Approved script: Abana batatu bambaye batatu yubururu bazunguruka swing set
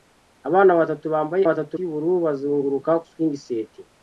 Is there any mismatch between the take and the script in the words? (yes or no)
no